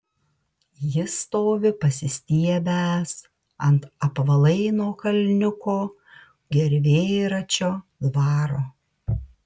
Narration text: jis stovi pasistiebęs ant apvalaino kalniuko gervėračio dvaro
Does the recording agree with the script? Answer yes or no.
yes